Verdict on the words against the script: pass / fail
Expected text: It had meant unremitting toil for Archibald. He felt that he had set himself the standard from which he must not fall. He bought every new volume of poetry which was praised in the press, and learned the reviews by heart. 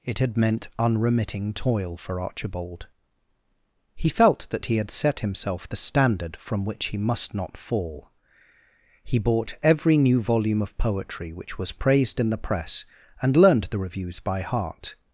pass